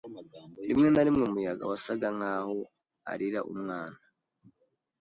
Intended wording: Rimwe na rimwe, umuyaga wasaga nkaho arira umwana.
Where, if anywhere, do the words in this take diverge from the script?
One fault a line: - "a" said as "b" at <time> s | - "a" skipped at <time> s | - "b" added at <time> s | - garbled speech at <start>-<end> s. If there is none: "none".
none